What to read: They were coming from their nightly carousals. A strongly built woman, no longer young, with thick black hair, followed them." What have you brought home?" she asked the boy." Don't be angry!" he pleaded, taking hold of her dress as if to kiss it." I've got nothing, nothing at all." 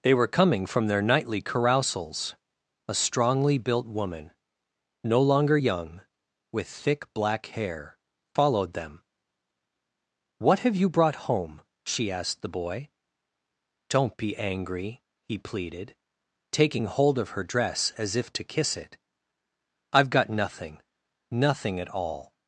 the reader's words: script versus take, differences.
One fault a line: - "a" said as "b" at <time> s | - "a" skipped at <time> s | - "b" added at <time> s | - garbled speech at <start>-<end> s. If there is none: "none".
none